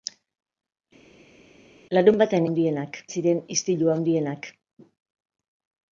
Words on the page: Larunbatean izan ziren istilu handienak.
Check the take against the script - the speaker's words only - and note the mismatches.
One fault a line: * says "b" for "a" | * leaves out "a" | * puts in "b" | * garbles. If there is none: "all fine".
* says "handienak" for "izan"